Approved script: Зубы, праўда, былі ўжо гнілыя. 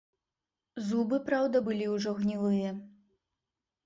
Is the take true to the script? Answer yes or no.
yes